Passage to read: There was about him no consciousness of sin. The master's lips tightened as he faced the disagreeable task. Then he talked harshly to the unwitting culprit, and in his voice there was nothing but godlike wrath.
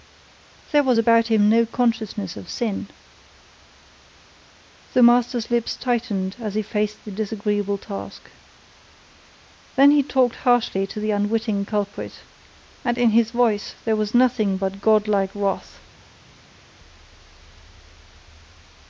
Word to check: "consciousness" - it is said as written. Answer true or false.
true